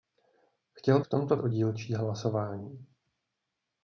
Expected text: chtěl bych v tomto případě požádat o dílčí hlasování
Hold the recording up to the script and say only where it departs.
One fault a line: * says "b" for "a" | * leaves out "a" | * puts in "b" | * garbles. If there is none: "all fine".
* leaves out "bych"
* leaves out "případě požádat"